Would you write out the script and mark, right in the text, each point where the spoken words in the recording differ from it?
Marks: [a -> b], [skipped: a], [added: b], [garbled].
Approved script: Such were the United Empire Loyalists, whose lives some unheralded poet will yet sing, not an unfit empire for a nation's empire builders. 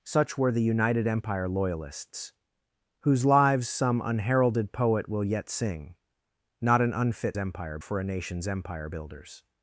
Such were the United Empire Loyalists, whose lives some unheralded poet will yet sing, not an unfit empire for a nation's empire builders.